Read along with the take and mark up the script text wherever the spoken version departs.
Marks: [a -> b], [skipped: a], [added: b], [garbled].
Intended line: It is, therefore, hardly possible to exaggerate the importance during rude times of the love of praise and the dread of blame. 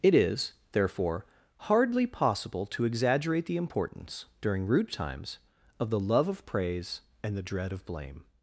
It is, therefore, hardly possible to exaggerate the importance during rude times of the love of praise and the dread of blame.